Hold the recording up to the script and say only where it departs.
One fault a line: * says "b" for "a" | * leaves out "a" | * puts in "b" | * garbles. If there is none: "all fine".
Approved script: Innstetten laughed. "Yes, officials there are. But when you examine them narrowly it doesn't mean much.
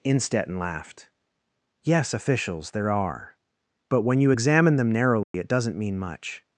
all fine